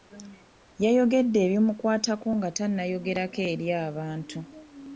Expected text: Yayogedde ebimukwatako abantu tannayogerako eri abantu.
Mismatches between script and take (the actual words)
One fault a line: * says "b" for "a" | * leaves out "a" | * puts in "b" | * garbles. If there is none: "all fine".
* says "nga" for "abantu"